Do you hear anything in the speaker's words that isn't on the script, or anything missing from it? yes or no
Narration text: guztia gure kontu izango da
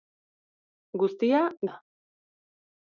yes